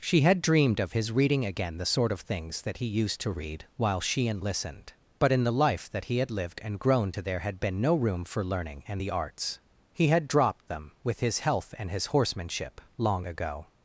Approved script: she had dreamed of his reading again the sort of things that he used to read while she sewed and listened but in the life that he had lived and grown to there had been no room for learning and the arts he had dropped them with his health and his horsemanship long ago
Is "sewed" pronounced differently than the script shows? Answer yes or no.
yes